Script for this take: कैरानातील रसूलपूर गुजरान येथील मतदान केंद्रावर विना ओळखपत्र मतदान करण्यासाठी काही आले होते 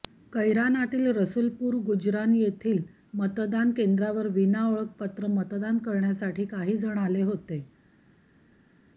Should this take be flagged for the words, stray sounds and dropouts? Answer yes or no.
yes